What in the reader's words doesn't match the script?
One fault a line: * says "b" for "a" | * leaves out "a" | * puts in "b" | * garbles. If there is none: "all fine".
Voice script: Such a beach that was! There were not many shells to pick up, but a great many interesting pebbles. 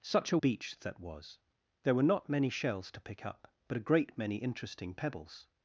all fine